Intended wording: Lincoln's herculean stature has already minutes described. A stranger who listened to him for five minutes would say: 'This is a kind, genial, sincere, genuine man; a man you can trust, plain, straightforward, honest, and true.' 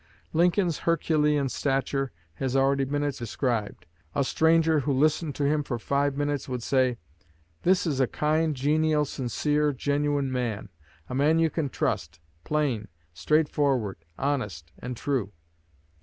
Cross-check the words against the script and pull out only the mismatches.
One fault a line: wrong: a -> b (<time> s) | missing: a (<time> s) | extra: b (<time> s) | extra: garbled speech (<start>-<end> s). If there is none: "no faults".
no faults